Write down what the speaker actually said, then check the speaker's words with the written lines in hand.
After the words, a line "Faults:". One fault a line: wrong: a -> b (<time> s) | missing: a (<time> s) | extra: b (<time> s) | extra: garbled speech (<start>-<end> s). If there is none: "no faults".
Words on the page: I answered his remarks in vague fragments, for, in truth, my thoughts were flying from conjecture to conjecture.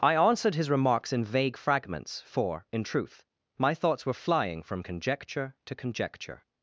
I answered his remarks in vague fragments, for, in truth, my thoughts were flying from conjecture to conjecture.
Faults:
no faults